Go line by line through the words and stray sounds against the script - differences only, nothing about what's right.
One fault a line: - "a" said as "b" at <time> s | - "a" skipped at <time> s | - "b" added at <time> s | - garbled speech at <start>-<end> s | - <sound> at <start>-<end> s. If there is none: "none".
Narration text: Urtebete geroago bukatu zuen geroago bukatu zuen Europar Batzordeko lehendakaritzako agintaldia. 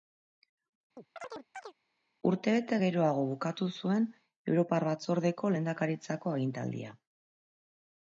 - chirp at 1.0-1.7 s
- "geroago bukatu zuen" skipped at 4.0 s